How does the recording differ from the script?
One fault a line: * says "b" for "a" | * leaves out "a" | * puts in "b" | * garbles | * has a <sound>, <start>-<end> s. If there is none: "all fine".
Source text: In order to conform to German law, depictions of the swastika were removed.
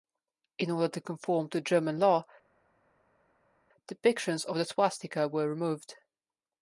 all fine